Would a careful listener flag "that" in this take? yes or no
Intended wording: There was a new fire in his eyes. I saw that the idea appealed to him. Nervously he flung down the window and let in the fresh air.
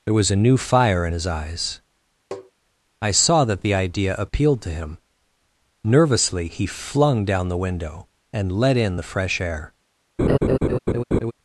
no